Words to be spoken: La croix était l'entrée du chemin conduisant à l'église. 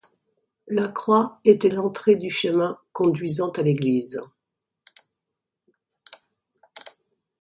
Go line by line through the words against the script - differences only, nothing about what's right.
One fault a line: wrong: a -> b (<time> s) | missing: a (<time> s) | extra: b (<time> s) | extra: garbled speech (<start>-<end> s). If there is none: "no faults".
no faults